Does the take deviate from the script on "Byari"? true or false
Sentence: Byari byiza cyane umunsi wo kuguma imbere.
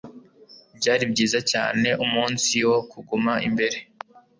false